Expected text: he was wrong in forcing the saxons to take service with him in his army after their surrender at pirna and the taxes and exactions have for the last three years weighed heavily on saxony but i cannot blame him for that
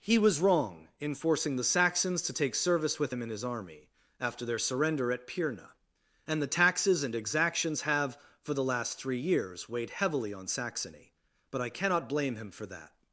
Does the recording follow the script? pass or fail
pass